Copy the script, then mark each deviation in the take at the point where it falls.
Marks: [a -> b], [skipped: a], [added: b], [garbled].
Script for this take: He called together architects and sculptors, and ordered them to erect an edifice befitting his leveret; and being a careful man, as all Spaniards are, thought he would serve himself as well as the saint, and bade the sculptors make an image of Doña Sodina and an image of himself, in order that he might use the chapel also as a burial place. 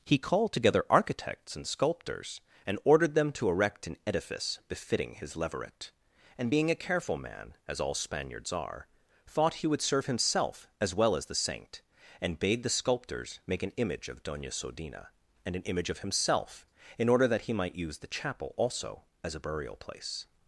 He called together architects and sculptors, and ordered them to erect an edifice befitting his leveret; and being a careful man, as all Spaniards are, thought he would serve himself as well as the saint, and bade the sculptors make an image of Doña Sodina and an image of himself, in order that he might use the chapel also as a burial place.